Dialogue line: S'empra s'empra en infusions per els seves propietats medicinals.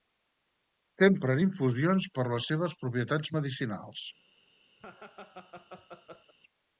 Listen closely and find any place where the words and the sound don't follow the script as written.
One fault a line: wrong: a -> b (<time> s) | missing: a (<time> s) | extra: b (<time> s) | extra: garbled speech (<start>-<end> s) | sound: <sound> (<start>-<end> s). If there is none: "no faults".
missing: s'empra (1.4 s)
wrong: els -> les (2.4 s)
sound: laugh (4.8-6.3 s)